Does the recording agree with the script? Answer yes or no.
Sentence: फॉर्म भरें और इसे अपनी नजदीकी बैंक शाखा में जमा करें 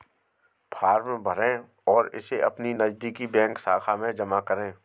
yes